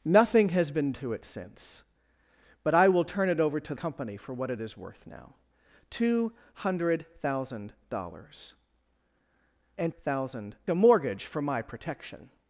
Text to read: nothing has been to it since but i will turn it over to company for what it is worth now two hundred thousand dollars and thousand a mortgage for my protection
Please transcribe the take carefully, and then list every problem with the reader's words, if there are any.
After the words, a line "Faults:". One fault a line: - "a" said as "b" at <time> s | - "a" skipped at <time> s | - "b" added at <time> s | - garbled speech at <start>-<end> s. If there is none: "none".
nothing has been to it since but i will turn it over to company for what it is worth now two hundred thousand dollars and thousand a mortgage for my protection
Faults:
none